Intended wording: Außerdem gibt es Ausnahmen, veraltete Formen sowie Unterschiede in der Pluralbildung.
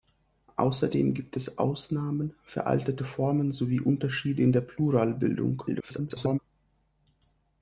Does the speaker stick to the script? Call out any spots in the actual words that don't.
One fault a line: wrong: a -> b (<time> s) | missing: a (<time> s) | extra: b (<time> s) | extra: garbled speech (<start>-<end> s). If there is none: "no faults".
extra: garbled speech (5.7-6.4 s)